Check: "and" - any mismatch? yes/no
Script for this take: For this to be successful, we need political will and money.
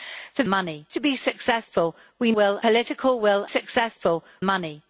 yes